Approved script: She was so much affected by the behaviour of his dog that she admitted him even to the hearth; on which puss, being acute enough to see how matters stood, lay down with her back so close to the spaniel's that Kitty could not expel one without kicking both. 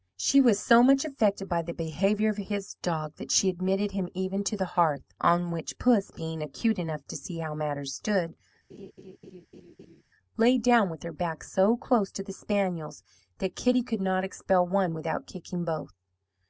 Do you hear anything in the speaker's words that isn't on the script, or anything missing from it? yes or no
no